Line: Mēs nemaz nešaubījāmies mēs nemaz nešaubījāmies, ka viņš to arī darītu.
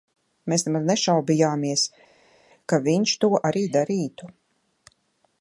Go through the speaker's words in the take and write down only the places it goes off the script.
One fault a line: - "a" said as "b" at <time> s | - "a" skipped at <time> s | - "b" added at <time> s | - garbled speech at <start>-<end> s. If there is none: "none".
- "mēs nemaz nešaubījāmies" skipped at 1.8 s